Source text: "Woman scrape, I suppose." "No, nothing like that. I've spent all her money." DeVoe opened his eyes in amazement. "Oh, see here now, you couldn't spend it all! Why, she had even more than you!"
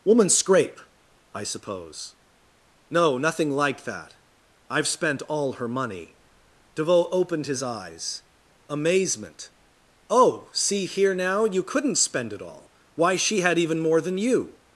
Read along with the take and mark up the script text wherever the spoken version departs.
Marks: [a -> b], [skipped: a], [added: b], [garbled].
"Woman scrape, I suppose." "No, nothing like that. I've spent all her money." DeVoe opened his eyes [skipped: in] amazement. "Oh, see here now, you couldn't spend it all! Why, she had even more than you!"